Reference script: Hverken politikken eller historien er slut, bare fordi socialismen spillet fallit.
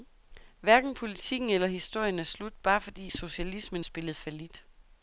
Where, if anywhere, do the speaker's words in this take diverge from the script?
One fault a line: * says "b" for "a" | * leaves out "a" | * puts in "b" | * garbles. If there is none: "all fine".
all fine